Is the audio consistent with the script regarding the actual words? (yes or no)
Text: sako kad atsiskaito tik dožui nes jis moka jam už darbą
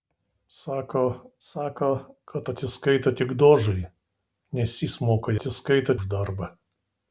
no